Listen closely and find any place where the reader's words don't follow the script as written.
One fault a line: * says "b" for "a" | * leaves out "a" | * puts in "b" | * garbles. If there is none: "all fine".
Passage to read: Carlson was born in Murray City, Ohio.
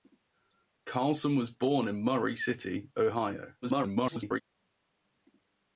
* garbles